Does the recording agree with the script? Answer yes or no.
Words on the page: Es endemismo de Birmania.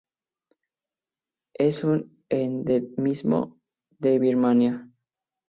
no